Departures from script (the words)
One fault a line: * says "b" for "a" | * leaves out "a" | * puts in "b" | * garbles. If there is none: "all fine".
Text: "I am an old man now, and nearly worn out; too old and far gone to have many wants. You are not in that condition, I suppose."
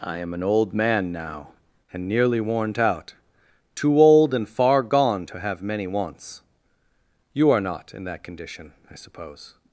all fine